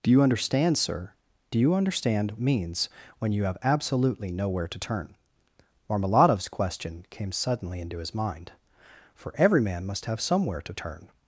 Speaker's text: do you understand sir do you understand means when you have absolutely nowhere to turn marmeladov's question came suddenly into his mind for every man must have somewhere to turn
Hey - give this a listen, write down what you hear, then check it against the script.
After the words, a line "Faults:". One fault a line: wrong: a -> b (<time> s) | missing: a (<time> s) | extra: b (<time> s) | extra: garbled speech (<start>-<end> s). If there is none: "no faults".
do you understand sir do you understand means when you have absolutely nowhere to turn marmeladov's question came suddenly into his mind for every man must have somewhere to turn
Faults:
no faults